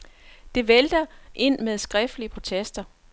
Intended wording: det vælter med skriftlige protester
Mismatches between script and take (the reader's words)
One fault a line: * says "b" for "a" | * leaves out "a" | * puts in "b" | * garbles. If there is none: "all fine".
* puts in "ind"